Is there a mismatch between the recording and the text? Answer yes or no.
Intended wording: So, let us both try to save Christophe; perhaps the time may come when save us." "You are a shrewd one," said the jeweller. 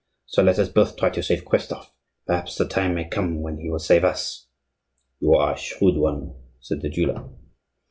yes